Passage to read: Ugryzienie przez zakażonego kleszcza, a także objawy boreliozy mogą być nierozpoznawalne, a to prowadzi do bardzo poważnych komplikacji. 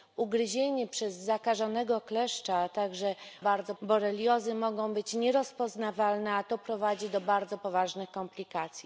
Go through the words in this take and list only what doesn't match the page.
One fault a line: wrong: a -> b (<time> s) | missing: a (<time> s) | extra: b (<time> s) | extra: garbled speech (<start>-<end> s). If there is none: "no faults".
wrong: objawy -> bardzo (3.4 s)